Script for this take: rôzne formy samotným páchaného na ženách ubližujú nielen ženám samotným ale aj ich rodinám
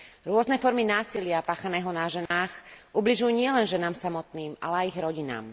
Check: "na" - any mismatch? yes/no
no